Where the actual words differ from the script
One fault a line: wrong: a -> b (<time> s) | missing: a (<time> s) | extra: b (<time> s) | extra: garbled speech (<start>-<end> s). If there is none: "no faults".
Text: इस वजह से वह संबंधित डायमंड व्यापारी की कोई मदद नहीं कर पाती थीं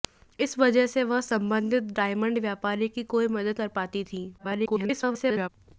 missing: नहीं (3.6 s)
extra: garbled speech (4.4-5.5 s)